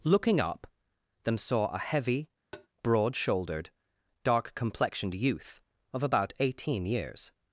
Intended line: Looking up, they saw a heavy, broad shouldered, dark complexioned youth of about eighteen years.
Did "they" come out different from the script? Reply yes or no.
yes